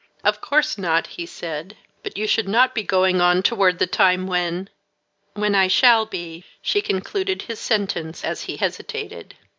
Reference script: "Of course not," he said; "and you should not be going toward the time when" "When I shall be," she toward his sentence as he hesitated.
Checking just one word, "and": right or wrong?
wrong